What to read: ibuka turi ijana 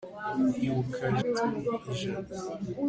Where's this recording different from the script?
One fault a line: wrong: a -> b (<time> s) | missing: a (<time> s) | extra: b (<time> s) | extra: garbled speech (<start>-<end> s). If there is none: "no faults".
no faults